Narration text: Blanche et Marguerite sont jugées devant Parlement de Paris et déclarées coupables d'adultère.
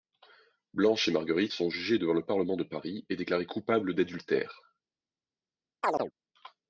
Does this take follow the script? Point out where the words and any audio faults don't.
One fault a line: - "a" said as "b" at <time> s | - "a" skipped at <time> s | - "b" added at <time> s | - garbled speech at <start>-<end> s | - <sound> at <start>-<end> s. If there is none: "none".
- "le" added at 2.1 s
- chirp at 5.8-6.1 s